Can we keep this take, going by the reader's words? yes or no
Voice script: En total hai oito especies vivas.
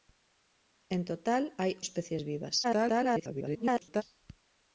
no